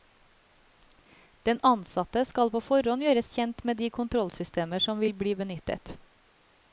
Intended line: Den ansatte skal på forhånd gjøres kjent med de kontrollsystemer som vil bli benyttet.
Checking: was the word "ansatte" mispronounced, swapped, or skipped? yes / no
no